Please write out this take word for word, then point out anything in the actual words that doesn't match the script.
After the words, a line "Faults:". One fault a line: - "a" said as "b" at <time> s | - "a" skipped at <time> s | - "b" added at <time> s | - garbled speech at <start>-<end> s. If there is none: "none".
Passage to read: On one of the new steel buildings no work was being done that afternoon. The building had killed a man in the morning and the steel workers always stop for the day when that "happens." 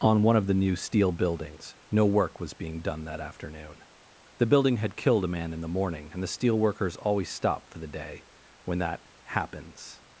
On one of the new steel buildings no work was being done that afternoon. The building had killed a man in the morning and the steel workers always stop for the day when that "happens."
Faults:
none